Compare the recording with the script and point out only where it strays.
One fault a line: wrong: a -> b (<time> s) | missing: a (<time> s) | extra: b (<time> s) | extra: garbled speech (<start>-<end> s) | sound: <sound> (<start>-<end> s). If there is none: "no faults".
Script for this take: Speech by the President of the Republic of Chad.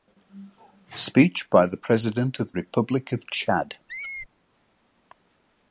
missing: the (2.5 s)
sound: squeak (3.9-4.3 s)